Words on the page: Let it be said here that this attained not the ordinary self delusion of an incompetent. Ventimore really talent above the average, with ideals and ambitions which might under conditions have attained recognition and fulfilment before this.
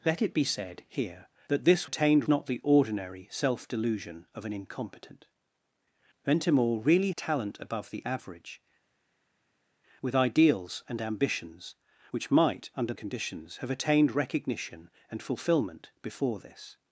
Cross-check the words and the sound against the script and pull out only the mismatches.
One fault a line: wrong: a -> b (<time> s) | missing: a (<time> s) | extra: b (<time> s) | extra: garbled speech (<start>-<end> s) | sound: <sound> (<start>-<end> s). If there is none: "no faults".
no faults